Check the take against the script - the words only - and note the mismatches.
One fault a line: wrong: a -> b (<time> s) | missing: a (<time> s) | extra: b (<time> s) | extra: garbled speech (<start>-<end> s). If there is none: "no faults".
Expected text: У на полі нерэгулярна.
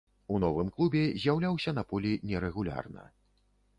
extra: новым клубе з'яўляўся (0.4 s)